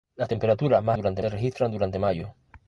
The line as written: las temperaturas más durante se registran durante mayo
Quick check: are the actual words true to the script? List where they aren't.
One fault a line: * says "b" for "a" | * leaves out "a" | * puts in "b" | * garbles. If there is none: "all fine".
all fine